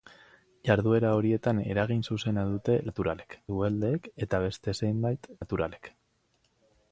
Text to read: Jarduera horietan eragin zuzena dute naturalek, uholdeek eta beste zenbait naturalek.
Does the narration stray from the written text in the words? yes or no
no